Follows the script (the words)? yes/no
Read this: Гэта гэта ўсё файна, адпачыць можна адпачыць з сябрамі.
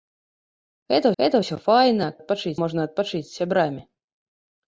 yes